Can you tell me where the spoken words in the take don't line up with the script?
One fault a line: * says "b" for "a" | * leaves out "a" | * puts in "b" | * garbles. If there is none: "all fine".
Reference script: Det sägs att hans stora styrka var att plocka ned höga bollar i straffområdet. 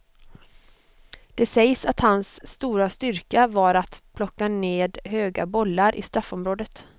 all fine